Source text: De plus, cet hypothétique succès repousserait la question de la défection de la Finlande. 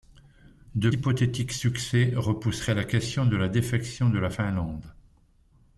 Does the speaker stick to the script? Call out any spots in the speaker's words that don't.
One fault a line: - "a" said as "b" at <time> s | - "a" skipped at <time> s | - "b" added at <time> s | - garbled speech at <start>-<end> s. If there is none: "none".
- "plus cet" skipped at 0.9 s